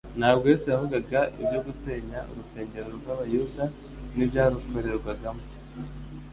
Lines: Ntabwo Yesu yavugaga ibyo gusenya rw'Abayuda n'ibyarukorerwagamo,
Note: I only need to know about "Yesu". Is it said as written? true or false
true